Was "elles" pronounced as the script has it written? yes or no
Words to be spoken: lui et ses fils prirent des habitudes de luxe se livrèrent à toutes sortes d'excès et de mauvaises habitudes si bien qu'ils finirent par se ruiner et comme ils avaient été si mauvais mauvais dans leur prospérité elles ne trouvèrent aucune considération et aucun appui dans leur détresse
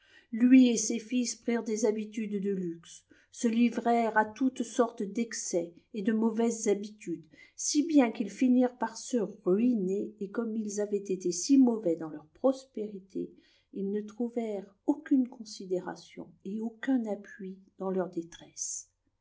no